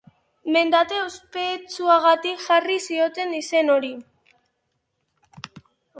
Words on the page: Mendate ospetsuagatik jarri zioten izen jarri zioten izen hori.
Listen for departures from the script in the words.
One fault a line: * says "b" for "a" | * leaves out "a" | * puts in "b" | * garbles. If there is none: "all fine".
* leaves out "jarri zioten izen"